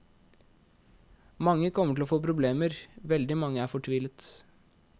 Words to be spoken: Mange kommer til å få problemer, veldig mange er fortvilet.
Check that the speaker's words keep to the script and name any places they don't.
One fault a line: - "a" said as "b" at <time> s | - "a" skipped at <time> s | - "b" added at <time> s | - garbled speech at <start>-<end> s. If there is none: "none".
none